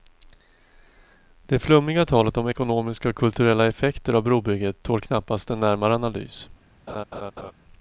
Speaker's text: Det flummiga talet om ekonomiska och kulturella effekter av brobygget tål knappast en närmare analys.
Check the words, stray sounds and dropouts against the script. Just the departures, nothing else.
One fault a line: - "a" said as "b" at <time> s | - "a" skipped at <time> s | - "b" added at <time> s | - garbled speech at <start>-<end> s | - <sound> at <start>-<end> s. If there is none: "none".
- laugh at 6.9-7.5 s